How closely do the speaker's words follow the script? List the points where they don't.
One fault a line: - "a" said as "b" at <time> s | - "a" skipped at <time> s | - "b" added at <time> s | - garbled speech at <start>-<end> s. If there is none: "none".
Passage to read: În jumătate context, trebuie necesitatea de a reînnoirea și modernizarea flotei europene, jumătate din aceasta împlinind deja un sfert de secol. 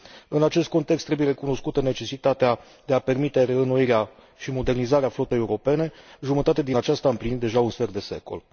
- "jumătate" said as "acest" at 0.4 s
- "recunoscută" added at 1.3 s
- "permite" added at 3.0 s